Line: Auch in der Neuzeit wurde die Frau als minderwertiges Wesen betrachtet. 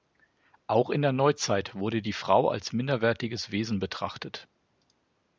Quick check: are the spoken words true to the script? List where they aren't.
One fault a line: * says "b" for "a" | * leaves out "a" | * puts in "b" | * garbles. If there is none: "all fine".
all fine